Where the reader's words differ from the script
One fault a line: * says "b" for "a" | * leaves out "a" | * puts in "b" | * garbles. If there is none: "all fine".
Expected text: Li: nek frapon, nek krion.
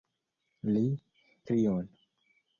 * leaves out "nek frapon nek"